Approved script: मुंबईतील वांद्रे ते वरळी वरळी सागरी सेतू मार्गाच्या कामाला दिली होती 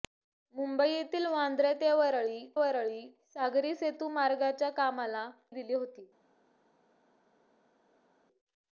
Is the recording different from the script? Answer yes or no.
no